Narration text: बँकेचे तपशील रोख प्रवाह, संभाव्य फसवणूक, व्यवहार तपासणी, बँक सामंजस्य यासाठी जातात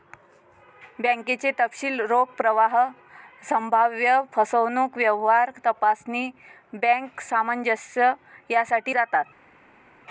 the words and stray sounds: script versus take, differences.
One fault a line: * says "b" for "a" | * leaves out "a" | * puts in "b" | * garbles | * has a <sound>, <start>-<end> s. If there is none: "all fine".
all fine